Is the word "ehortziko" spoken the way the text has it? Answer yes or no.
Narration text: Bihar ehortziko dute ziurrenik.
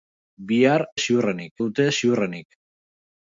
no